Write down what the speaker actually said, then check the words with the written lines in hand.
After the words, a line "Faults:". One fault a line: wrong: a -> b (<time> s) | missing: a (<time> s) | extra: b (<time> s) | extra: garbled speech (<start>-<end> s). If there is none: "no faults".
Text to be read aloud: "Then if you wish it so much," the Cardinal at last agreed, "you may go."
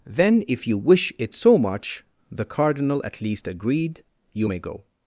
"Then if you wish it so much," the Cardinal at least agreed, "you may go."
Faults:
wrong: last -> least (3.2 s)